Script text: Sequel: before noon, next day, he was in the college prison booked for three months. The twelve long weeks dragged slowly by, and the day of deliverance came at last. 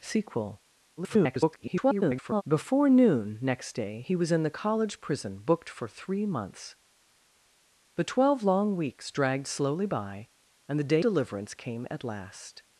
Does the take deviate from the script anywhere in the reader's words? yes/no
yes